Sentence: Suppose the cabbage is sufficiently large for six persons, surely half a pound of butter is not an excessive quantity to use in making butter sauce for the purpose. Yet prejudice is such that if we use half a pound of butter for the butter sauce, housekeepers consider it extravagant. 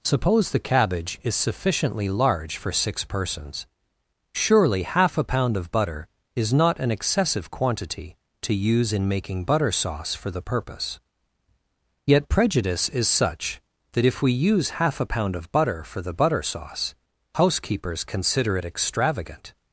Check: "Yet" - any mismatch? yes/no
no